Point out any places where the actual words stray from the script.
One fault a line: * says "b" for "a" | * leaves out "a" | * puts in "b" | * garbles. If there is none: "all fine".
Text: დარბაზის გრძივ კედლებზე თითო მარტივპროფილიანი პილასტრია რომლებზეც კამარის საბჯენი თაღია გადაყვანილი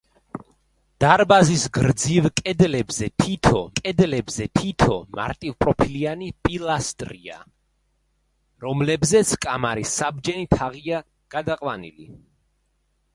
* puts in "კედლებზე თითო"